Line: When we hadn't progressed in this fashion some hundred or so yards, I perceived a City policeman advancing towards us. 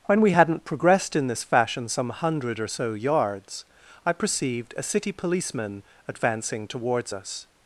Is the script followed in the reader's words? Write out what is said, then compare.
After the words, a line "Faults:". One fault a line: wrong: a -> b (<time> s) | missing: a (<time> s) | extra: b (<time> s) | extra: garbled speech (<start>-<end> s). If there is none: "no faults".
When we hadn't progressed in this fashion some hundred or so yards, I perceived a City policeman advancing towards us.
Faults:
no faults